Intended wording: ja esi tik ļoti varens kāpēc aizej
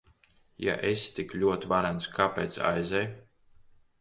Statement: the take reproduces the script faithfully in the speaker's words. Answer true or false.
true